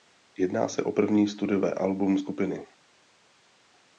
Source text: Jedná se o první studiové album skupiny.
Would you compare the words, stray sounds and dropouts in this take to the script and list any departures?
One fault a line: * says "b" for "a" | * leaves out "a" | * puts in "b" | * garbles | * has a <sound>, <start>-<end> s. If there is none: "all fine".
all fine